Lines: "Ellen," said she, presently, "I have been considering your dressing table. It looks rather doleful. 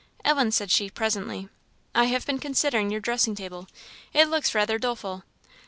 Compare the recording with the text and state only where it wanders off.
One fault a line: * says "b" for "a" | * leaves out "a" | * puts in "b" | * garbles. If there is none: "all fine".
all fine